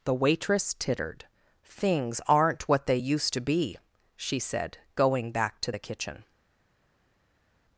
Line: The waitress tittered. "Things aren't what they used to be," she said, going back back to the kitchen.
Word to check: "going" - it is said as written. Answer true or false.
true